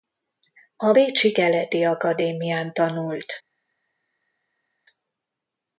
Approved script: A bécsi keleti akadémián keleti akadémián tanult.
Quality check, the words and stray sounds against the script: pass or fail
fail